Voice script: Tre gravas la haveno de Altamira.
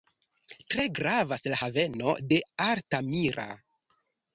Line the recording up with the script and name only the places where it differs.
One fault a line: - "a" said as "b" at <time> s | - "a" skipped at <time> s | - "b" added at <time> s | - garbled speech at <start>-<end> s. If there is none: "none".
none